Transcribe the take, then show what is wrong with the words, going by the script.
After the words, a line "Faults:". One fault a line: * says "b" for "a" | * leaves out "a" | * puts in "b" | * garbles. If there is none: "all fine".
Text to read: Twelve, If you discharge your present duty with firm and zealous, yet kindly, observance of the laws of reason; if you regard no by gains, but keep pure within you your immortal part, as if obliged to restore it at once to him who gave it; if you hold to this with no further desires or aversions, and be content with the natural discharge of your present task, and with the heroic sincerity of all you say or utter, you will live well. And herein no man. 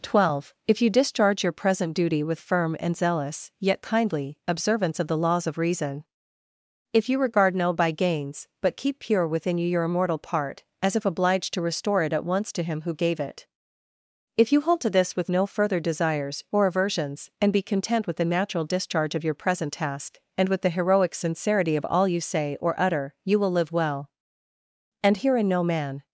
Twelve, If you discharge your present duty with firm and zealous, yet kindly, observance of the laws of reason; if you regard no by gains, but keep pure within you your immortal part, as if obliged to restore it at once to him who gave it; if you hold to this with no further desires or aversions, and be content with the natural discharge of your present task, and with the heroic sincerity of all you say or utter, you will live well. And herein no man.
Faults:
all fine